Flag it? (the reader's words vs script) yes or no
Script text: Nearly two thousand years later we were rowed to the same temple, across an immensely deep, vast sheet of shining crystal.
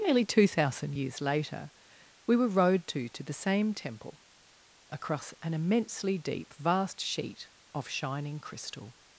yes